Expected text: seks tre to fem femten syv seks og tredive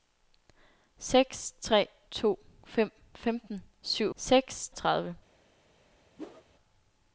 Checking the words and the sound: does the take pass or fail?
fail